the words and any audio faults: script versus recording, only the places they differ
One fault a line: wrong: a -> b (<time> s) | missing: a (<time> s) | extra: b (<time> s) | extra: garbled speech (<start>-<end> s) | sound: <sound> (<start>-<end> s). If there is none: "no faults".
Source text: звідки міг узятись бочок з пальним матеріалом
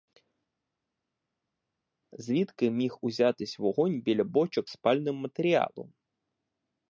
extra: вогонь біля (3.6 s)